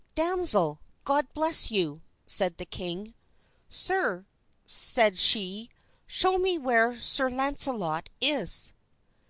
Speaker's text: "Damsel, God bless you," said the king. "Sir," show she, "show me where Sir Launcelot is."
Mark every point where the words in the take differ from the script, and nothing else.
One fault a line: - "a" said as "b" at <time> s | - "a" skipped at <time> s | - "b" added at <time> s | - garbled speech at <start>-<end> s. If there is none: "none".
- "show" said as "said" at 4.7 s